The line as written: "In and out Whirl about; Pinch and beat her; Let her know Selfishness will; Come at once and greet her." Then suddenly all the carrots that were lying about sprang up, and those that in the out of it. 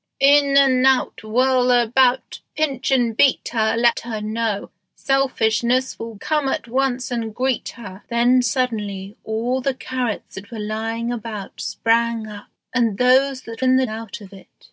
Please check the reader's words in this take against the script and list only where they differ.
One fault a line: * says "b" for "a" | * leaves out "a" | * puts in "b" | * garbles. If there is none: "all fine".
all fine